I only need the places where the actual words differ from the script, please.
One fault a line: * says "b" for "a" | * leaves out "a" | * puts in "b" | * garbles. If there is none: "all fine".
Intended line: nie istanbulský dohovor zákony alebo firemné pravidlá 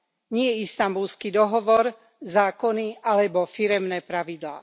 all fine